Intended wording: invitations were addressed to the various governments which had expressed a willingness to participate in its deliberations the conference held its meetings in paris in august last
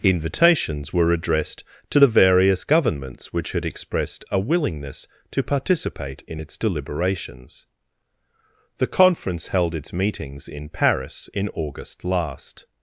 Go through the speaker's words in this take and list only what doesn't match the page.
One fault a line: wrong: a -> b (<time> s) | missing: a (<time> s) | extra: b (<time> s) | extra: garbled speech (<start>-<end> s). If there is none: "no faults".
no faults